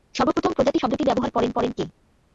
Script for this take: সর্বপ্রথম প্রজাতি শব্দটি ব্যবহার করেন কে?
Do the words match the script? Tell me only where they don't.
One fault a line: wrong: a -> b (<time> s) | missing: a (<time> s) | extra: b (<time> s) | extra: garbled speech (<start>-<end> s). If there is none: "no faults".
extra: করেন (1.5 s)